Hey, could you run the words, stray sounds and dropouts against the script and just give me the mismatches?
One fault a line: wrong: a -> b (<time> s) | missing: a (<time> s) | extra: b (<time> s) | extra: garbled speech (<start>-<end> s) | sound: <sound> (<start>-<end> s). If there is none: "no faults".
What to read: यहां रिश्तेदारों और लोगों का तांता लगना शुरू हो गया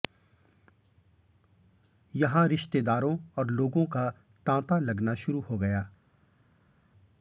no faults